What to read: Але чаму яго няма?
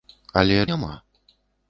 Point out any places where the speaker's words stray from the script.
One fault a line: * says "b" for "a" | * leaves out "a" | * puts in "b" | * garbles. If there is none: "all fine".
* leaves out "чаму яго"